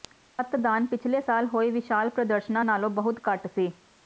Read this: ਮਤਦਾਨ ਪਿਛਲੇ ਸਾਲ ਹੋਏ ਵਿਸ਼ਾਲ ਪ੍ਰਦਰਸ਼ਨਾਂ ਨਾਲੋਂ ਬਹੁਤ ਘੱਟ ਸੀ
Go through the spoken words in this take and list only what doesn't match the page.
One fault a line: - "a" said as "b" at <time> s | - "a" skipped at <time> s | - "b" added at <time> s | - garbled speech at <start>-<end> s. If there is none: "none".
none